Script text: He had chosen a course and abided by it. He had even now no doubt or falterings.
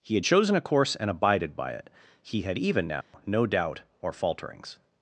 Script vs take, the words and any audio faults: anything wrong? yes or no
yes